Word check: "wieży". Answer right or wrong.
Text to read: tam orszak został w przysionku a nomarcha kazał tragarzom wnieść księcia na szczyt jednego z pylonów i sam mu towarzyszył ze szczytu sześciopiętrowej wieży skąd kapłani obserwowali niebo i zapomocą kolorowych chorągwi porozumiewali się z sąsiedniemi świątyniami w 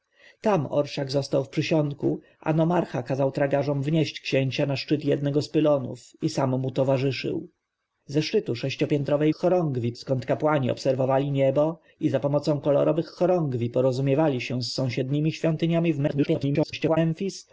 wrong